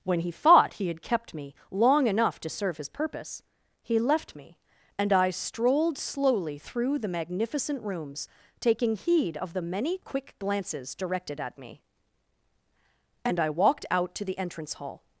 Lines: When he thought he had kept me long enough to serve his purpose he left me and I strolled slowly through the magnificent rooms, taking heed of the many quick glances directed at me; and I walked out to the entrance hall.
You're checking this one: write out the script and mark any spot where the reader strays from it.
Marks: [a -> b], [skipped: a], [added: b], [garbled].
When he thought he had kept me long enough to serve his purpose he left me and I strolled slowly through the magnificent rooms, taking heed of the many quick glances directed at me; and I walked out to the entrance hall.